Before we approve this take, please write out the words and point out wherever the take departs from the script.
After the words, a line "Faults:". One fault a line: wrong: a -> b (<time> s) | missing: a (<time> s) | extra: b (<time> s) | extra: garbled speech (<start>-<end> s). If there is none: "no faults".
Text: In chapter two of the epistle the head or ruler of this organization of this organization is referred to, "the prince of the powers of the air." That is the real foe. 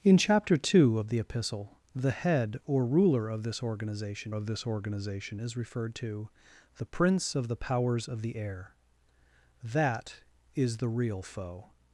In chapter two of the epistle the head or ruler of this organization of this organization is referred to, "the prince of the powers of the air." That is the real foe.
Faults:
no faults